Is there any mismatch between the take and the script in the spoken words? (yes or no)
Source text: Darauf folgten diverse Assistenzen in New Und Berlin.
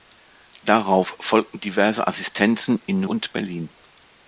no